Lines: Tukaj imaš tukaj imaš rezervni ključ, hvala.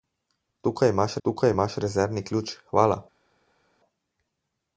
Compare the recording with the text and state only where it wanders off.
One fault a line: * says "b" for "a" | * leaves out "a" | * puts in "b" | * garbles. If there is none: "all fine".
all fine